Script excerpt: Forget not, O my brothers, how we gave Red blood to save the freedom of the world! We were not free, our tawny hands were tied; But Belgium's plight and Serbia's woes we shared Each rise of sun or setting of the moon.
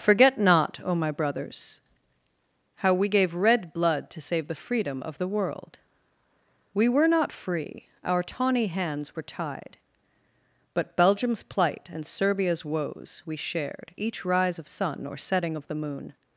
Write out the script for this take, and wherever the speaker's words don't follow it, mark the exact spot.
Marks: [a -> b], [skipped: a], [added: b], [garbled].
Forget not, O my brothers, how we gave Red blood to save the freedom of the world! We were not free, our tawny hands were tied; But Belgium's plight and Serbia's woes we shared Each rise of sun or setting of the moon.